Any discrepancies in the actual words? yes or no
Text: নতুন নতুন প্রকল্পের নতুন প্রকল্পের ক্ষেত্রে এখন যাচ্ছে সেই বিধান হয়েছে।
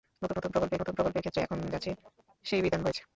no